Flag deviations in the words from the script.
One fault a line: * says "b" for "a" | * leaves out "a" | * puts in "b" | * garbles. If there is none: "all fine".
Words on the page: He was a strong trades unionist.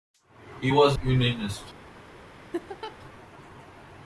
* leaves out "a strong trades"